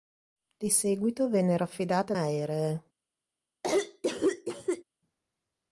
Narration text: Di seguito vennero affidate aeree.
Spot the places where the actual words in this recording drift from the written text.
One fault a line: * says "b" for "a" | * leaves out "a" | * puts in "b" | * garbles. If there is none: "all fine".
all fine